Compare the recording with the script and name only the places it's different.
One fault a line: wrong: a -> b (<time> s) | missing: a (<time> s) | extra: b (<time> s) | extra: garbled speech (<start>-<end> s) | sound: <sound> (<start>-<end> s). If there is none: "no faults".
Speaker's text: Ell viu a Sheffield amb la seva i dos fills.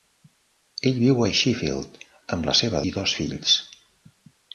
no faults